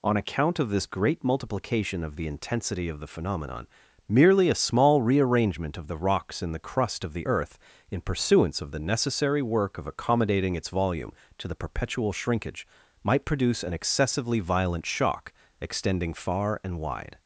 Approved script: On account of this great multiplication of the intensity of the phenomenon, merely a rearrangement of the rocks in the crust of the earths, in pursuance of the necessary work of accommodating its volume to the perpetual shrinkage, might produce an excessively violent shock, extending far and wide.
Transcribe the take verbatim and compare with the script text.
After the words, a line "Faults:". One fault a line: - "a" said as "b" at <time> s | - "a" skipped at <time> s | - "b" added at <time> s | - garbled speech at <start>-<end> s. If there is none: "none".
On account of this great multiplication of the intensity of the phenomenon, merely a small rearrangement of the rocks in the crust of the earth, in pursuance of the necessary work of accommodating its volume to the perpetual shrinkage, might produce an excessively violent shock, extending far and wide.
Faults:
- "small" added at 4.5 s
- "earths" said as "earth" at 7.2 s